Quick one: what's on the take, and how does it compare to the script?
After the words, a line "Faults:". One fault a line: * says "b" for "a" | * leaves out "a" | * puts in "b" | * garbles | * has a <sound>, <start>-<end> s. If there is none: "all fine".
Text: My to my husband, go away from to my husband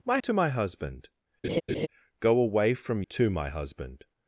My to my husband, go away from to my husband
Faults:
* has a laugh, 1.4-1.9 s